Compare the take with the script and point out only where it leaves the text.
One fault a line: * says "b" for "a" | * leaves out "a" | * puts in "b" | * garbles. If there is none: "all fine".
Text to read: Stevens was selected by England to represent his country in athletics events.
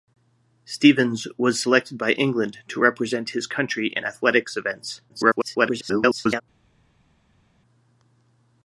* garbles